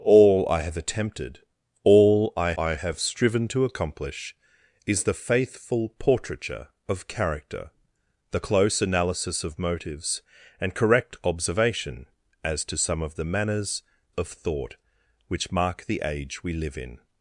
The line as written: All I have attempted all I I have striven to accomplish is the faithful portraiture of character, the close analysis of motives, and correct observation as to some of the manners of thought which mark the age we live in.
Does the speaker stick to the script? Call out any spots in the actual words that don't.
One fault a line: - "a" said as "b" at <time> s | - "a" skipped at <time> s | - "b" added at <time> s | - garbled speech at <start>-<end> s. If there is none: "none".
none